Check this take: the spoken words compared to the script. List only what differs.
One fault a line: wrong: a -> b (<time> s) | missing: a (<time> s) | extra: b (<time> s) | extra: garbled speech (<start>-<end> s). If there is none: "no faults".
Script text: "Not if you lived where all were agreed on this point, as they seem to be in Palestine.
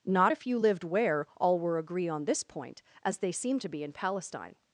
wrong: agreed -> agree (1.8 s)